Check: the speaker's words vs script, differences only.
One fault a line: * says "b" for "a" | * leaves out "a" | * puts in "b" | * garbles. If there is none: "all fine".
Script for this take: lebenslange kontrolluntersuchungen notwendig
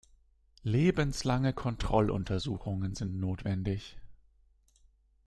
* puts in "sind"